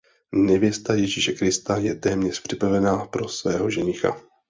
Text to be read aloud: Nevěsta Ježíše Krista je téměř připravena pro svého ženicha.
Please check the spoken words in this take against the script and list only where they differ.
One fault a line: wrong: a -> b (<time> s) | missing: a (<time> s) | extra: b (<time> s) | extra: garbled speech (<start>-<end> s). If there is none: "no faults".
no faults